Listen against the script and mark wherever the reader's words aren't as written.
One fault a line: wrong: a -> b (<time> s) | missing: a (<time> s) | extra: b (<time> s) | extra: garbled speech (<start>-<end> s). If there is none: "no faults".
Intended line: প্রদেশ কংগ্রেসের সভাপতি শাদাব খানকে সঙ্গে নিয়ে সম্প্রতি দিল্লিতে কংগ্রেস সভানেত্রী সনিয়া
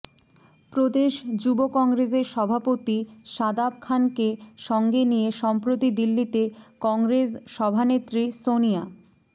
extra: যুব (1.4 s)